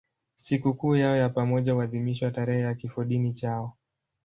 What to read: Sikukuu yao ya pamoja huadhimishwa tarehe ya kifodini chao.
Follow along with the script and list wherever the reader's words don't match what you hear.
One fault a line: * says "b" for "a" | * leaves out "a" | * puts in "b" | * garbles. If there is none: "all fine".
all fine